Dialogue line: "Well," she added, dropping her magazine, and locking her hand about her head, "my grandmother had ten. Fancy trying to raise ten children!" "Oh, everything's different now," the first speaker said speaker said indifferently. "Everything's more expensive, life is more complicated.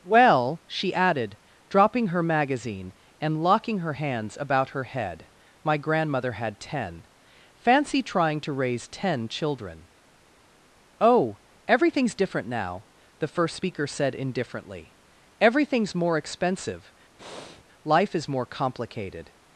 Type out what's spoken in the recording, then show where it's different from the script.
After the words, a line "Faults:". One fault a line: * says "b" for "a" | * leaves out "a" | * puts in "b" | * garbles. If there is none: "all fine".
"Well," she added, dropping her magazine, and locking her hands about her head, "my grandmother had ten. Fancy trying to raise ten children!" "Oh, everything's different now," the first speaker said indifferently. "Everything's more expensive, life is more complicated.
Faults:
* says "hands" for "hand"
* leaves out "speaker said"